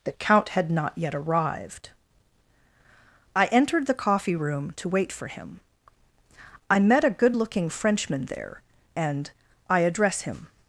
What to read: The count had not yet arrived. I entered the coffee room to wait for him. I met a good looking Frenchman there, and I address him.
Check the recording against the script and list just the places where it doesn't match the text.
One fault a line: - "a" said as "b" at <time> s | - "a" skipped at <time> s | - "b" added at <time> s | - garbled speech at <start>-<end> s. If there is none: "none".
none